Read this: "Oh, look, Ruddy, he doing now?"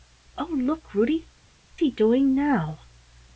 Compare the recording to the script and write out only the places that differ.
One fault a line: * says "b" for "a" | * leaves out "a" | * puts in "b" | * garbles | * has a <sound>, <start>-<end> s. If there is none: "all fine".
all fine